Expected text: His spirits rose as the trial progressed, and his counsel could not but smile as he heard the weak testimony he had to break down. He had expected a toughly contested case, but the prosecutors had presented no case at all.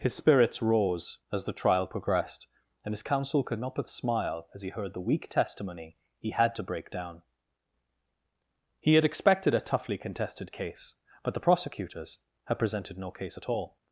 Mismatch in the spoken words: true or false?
false